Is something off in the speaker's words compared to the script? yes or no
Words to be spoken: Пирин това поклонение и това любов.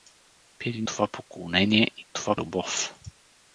no